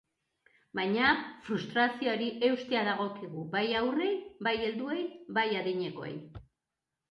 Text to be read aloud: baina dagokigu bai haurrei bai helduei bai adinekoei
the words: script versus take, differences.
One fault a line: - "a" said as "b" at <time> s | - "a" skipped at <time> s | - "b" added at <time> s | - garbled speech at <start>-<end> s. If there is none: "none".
- "frustrazioari eustea" added at 1.5 s